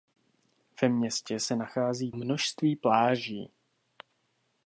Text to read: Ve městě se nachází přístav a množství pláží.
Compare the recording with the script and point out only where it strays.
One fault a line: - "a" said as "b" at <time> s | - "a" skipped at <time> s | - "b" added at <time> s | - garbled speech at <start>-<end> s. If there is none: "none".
- "přístav a" skipped at 2.1 s